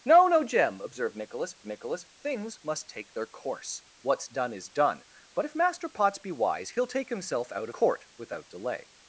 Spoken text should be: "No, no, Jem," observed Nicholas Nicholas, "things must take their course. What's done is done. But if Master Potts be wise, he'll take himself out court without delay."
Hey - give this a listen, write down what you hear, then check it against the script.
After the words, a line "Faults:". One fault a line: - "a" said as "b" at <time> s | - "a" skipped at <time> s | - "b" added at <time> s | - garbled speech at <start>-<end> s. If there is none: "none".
"No, no, Jem," observed Nicholas Nicholas, "things must take their course. What's done is done. But if Master Potts be wise, he'll take himself out court without delay."
Faults:
none